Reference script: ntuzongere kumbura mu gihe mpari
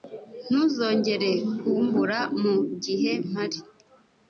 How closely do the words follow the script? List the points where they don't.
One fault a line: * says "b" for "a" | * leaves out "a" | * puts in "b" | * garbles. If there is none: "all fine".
all fine